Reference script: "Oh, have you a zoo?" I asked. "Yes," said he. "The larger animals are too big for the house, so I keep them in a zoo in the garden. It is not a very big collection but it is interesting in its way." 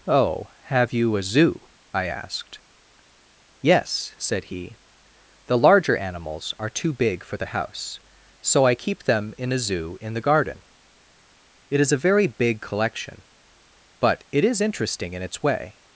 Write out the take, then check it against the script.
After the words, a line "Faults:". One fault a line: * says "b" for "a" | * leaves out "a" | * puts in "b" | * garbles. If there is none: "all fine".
"Oh, have you a zoo?" I asked. "Yes," said he. "The larger animals are too big for the house, so I keep them in a zoo in the garden. It is a very big collection but it is interesting in its way."
Faults:
* leaves out "not"